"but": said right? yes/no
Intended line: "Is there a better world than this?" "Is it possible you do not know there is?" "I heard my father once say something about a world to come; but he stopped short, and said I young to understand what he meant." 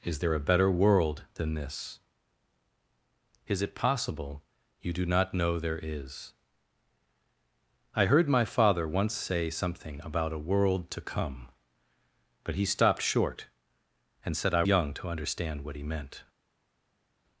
yes